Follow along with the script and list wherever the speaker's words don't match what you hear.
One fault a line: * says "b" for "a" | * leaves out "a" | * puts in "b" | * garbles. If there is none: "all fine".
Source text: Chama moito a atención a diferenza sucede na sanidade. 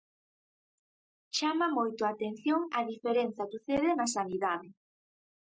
all fine